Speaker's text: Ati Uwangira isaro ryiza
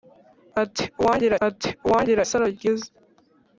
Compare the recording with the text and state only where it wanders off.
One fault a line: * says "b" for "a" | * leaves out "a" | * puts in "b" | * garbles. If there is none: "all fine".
* puts in "ati Uwangira"